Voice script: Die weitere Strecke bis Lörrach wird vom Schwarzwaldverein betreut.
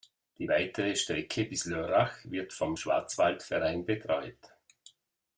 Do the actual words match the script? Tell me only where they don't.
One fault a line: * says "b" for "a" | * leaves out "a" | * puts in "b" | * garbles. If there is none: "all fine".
all fine